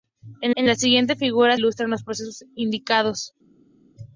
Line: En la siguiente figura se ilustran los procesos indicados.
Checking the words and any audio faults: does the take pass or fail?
fail